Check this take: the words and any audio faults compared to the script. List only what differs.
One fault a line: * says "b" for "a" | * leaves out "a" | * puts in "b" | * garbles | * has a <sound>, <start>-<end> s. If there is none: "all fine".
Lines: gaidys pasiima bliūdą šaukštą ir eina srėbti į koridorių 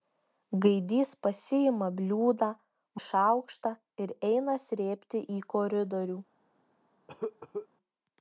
* has a cough, 7.1-7.7 s